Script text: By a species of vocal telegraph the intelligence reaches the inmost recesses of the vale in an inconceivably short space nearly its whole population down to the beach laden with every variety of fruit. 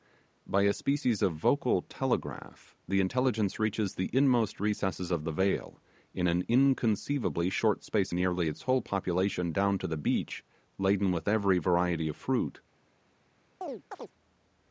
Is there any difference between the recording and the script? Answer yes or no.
no